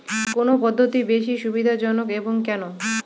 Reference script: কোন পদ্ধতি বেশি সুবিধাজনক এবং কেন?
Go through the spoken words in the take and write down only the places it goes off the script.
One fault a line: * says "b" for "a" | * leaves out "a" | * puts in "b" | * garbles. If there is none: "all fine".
all fine